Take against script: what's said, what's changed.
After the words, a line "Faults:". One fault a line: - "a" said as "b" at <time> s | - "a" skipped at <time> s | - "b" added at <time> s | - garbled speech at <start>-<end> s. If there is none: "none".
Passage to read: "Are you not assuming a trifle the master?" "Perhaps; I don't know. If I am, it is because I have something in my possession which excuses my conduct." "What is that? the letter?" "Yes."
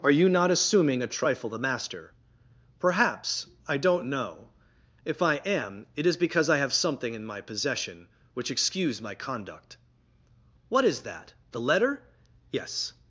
"Are you not assuming a trifle the master?" "Perhaps; I don't know. If I am, it is because I have something in my possession which excuse my conduct." "What is that? the letter?" "Yes."
Faults:
- "excuses" said as "excuse" at 8.5 s